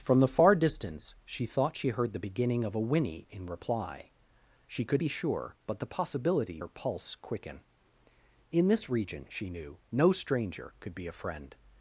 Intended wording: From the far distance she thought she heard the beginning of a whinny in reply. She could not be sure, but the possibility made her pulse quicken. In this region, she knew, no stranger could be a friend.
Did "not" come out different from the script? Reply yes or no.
yes